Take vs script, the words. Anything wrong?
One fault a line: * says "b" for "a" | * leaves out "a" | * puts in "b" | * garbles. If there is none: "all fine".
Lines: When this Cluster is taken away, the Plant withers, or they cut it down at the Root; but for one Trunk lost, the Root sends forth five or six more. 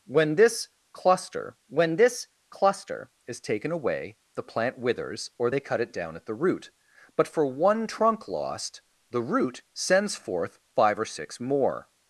* puts in "when this Cluster"